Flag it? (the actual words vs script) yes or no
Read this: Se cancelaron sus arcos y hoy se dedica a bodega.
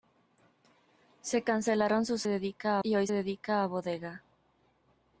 yes